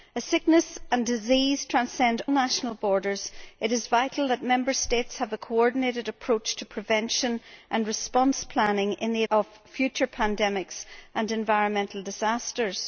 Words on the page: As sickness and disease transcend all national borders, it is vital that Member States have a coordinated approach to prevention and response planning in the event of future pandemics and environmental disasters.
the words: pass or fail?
fail